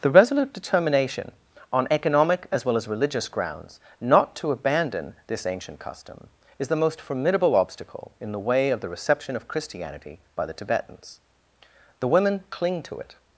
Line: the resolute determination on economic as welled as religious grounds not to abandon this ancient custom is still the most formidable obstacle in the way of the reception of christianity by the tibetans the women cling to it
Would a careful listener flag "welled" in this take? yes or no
yes